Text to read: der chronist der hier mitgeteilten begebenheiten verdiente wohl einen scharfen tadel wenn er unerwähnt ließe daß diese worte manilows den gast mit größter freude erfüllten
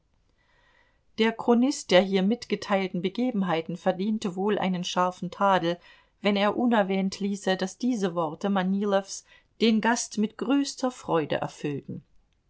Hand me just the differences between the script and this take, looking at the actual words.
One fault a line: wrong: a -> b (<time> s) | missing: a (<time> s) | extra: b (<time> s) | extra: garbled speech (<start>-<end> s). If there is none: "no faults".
no faults